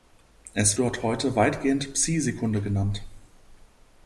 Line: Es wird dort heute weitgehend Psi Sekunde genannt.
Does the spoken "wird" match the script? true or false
false